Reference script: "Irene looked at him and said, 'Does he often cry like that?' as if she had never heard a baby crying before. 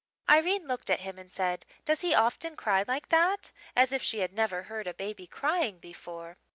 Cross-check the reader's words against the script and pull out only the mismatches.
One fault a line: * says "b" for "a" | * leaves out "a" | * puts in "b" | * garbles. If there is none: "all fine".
all fine